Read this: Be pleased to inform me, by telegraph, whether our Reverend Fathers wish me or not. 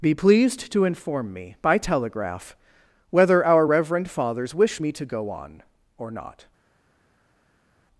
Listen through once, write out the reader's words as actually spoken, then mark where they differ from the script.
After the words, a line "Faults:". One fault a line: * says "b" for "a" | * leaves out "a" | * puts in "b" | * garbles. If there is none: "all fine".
Be pleased to inform me, by telegraph, whether our Reverend Fathers wish me to go on, or not.
Faults:
* puts in "to go on"